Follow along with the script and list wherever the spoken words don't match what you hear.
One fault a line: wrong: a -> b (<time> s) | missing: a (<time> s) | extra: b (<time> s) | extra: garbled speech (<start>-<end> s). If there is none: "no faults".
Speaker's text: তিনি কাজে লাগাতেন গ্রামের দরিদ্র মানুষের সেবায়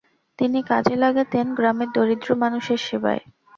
no faults